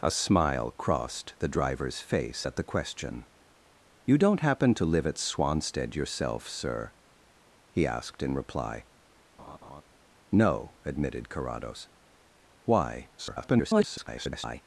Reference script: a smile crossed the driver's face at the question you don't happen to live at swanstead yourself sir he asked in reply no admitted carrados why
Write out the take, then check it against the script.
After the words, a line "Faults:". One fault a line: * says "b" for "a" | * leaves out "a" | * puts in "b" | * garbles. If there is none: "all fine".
a smile crossed the driver's face at the question you don't happen to live at swanstead yourself sir he asked in reply no admitted carrados why [garbled]
Faults:
* garbles